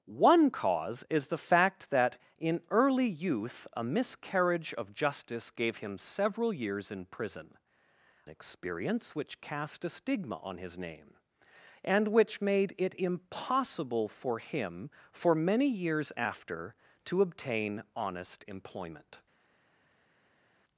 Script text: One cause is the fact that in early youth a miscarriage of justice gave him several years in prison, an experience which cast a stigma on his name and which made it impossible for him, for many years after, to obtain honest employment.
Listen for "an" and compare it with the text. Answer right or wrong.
wrong